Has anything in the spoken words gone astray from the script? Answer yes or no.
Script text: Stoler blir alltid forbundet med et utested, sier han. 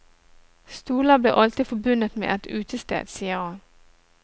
no